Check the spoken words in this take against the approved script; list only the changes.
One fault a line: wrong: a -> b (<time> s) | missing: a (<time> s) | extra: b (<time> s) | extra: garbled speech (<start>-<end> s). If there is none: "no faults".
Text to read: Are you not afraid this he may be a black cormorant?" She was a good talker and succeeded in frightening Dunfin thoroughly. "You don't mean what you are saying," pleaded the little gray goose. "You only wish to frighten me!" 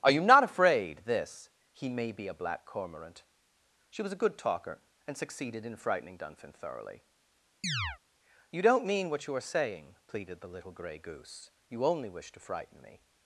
no faults